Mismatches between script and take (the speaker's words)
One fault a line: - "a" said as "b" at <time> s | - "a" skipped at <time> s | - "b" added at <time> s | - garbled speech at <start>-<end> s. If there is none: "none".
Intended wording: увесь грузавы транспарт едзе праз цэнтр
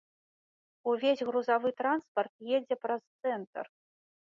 none